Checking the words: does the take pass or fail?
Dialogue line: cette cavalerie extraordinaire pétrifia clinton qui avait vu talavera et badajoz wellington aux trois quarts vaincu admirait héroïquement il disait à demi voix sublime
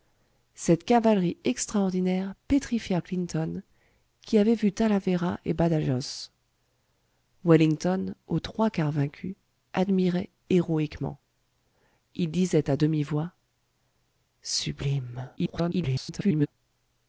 fail